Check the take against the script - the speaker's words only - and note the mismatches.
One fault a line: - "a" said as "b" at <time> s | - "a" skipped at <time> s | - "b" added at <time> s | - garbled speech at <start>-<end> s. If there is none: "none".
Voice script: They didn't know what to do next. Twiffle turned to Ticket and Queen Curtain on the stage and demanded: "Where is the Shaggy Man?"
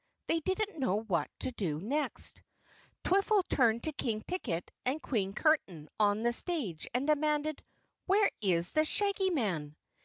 - "King" added at 3.9 s